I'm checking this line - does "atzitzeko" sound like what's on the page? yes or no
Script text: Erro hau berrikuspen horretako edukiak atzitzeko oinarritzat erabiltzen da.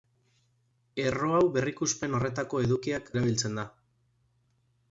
no